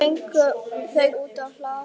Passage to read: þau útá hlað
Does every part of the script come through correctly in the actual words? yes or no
yes